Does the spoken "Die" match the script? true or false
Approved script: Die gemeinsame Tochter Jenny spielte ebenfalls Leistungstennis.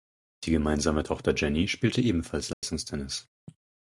true